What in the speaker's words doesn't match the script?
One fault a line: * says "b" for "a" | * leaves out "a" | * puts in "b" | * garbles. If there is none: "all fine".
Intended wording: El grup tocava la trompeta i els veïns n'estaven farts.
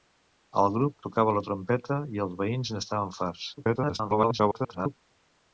* garbles